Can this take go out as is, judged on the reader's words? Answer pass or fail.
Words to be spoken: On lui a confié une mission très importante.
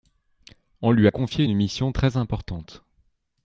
pass